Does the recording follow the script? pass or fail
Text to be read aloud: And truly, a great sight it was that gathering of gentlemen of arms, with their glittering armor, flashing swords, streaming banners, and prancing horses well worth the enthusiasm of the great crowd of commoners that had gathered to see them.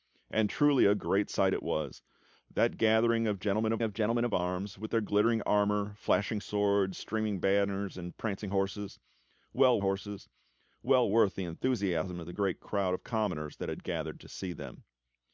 fail